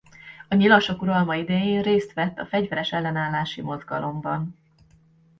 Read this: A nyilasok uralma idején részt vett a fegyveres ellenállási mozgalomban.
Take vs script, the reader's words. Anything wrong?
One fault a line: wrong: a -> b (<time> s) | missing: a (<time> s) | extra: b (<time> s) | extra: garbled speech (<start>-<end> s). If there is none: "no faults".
no faults